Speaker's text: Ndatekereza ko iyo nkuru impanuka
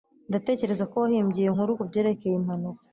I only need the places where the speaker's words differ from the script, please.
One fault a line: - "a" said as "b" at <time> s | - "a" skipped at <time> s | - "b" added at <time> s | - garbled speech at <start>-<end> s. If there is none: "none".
- "wahimbye" added at 1.0 s
- "kubyerekeye" added at 1.8 s